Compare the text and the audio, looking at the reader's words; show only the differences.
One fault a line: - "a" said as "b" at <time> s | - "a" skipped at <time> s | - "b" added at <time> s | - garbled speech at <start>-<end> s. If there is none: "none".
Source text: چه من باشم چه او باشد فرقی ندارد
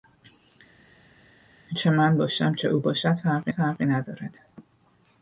- "فرقی" added at 3.5 s